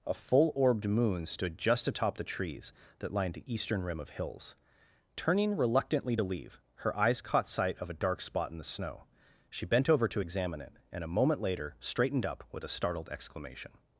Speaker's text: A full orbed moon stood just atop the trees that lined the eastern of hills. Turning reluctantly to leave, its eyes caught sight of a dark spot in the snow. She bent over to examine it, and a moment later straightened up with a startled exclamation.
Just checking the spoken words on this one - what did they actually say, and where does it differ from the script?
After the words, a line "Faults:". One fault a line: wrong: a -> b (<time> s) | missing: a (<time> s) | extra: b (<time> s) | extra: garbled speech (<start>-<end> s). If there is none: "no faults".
A full orbed moon stood just atop the trees that lined the eastern rim of hills. Turning reluctantly to leave, her eyes caught sight of a dark spot in the snow. She bent over to examine it, and a moment later straightened up with a startled exclamation.
Faults:
extra: rim (3.8 s)
wrong: its -> her (6.8 s)